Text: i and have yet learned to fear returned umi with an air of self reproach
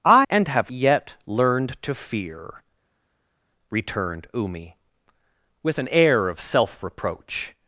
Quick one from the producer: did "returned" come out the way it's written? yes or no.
yes